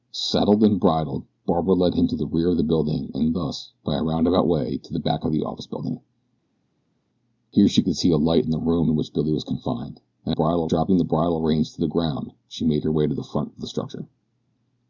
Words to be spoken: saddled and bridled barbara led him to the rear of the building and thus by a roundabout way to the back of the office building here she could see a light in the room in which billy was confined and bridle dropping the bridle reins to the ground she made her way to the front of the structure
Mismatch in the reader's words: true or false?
false